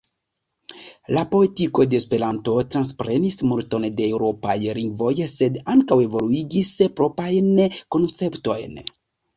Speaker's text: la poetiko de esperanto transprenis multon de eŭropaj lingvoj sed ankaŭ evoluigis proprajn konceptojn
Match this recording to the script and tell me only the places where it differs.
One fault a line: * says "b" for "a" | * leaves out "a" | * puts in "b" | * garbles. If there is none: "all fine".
all fine